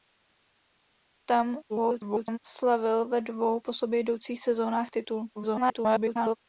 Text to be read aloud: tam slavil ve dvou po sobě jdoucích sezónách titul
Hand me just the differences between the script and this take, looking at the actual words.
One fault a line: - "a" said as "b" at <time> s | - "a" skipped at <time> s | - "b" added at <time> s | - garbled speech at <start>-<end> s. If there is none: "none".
- garbled speech at 1.7-2.4 s
- garbled speech at 5.4-6.4 s